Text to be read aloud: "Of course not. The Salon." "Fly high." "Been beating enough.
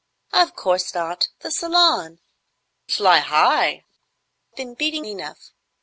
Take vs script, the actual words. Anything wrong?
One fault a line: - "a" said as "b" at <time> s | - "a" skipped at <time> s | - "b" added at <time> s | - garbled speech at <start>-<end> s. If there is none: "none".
none